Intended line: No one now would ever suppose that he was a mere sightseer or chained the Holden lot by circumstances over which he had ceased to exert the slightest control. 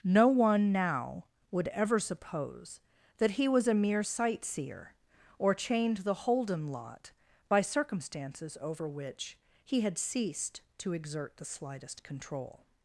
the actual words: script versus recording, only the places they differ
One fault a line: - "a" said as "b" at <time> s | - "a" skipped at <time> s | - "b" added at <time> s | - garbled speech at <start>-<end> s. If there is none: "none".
none